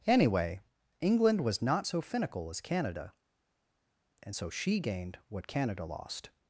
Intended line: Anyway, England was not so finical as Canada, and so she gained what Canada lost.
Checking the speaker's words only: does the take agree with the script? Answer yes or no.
yes